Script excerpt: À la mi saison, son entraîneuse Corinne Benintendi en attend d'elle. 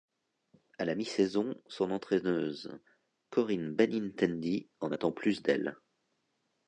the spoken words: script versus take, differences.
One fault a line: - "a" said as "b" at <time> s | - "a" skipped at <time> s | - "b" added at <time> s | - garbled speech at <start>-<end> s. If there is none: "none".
- "plus" added at 5.1 s